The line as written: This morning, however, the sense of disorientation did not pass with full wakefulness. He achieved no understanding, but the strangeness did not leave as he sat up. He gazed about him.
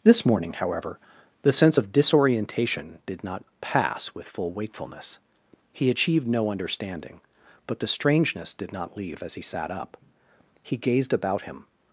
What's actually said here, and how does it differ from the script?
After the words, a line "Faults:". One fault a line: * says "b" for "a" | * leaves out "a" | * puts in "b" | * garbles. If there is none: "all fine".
This morning, however, the sense of disorientation did not pass with full wakefulness. He achieved no understanding, but the strangeness did not leave as he sat up. He gazed about him.
Faults:
all fine